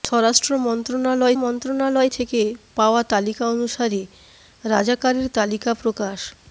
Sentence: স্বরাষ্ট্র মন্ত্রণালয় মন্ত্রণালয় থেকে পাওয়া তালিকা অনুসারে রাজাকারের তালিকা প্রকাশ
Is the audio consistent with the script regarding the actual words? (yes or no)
yes